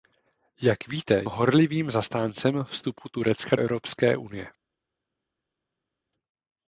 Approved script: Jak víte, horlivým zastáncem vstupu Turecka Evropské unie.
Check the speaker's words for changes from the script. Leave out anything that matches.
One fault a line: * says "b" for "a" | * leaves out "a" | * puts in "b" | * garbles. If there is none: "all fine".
all fine